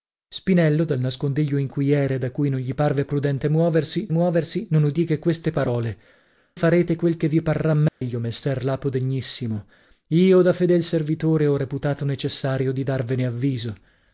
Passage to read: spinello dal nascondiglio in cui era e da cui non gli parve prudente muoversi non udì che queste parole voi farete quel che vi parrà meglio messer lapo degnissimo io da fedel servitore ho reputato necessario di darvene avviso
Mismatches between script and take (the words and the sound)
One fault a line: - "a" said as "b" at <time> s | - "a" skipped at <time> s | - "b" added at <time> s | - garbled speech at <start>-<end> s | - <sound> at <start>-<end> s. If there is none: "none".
- "muoversi" added at 4.1 s
- "voi" skipped at 6.0 s
- dropout at 7.9-8.0 s